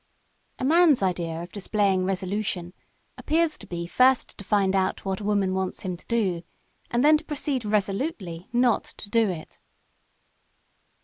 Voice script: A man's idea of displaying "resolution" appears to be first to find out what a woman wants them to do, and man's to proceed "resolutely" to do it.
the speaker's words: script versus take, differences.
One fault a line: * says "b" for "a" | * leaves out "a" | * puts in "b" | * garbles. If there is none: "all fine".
* says "him" for "them"
* says "then" for "man's"
* puts in "not"